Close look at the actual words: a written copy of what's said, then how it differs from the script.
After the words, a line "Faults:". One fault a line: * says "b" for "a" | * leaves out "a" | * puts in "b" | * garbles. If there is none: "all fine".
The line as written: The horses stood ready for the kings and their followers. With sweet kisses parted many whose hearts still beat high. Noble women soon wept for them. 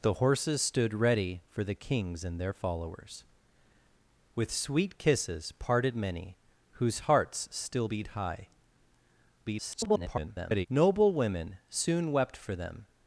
The horses stood ready for the kings and their followers. With sweet kisses parted many whose hearts still beat high. [garbled] Noble women soon wept for them.
Faults:
* garbles